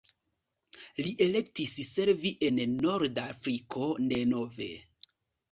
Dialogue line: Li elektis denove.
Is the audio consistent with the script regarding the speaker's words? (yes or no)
no